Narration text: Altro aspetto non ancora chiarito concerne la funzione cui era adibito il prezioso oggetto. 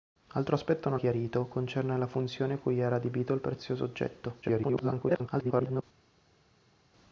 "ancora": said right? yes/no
no